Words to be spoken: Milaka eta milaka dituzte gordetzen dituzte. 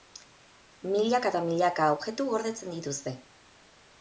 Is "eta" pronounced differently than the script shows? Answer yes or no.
no